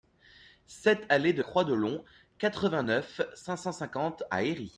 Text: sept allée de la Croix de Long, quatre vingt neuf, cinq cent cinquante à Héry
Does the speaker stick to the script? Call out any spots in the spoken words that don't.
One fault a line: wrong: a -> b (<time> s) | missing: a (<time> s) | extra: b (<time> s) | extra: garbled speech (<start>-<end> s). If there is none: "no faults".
missing: la (1.4 s)